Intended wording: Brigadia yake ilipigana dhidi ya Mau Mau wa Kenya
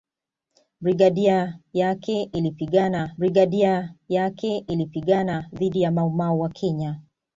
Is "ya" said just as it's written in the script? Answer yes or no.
yes